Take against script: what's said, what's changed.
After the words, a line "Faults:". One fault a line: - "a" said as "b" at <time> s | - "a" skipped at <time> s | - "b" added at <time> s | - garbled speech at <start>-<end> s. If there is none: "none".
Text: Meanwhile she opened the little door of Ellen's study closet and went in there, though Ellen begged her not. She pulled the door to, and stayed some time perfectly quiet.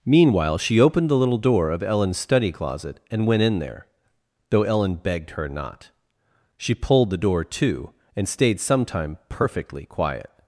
Meanwhile she opened the little door of Ellen's study closet and went in there, though Ellen begged her not. She pulled the door to, and stayed some time perfectly quiet.
Faults:
none